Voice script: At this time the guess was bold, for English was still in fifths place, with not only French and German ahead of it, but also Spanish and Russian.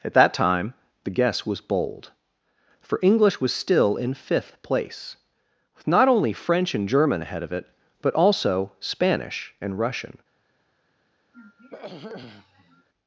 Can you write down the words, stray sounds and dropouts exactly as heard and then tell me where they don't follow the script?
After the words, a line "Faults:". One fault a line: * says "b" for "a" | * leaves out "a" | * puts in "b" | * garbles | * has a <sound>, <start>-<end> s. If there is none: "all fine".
At that time the guess was bold, for English was still in fifth place, with not only French and German ahead of it, but also Spanish and Russian.
Faults:
* says "that" for "this"
* says "fifth" for "fifths"
* has a throat clearing, 11.3-12.9 s